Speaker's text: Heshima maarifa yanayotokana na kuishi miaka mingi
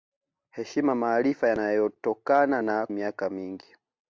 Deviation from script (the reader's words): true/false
true